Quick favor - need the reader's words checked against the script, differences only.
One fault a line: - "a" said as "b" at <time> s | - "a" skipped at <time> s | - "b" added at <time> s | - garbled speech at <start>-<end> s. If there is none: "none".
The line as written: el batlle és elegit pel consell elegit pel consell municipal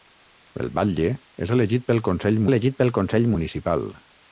none